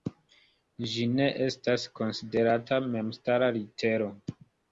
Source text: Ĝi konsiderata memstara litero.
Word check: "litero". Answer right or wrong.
right